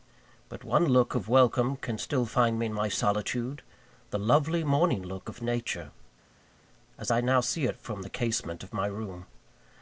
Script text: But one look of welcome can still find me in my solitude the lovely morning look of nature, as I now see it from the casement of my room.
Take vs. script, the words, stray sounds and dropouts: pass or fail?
pass